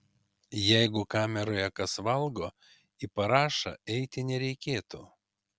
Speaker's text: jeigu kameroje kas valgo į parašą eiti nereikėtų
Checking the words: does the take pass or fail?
pass